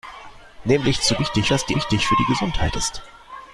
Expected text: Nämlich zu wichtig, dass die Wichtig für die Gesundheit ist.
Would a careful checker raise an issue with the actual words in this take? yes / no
no